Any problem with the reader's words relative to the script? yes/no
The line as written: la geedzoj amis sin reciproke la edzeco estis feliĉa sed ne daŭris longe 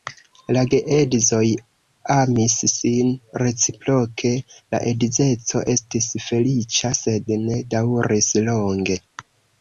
no